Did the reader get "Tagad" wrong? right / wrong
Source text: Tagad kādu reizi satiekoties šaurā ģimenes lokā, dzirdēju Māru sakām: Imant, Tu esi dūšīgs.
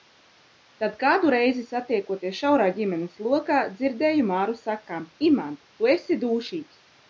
wrong